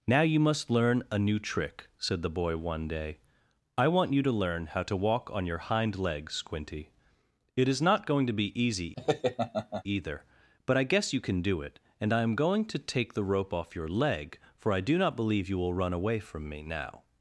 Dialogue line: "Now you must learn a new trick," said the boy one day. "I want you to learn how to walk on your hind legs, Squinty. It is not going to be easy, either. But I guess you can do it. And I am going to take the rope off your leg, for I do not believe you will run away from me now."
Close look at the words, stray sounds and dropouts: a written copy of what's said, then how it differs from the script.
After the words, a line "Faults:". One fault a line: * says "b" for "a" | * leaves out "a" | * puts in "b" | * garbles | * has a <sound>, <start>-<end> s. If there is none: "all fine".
"Now you must learn a new trick," said the boy one day. "I want you to learn how to walk on your hind legs, Squinty. It is not going to be easy, either. But I guess you can do it. And I am going to take the rope off your leg, for I do not believe you will run away from me now."
Faults:
* has a laugh, 9.0-9.8 s